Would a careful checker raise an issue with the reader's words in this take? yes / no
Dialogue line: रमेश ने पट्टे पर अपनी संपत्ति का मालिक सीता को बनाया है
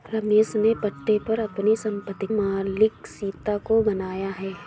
yes